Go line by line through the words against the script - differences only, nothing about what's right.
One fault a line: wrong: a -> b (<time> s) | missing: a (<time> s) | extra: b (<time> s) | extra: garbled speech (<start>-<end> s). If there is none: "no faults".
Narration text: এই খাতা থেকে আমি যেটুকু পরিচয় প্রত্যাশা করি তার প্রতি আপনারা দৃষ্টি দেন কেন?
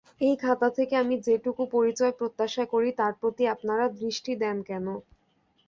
no faults